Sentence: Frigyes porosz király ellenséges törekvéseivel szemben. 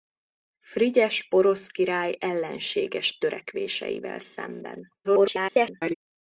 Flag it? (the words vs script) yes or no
yes